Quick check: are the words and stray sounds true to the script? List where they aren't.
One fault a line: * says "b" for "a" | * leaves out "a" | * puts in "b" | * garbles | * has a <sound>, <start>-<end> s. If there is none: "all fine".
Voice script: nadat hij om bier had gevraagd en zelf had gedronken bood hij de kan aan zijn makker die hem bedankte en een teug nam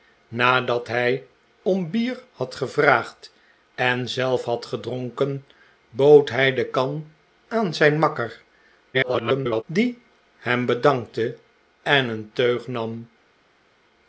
* garbles